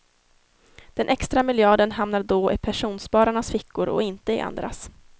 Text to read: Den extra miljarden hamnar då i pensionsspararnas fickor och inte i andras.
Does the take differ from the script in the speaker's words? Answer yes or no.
no